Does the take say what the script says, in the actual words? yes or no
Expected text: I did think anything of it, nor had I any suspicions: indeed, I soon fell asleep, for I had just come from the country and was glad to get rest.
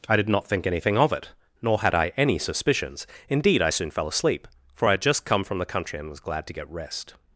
no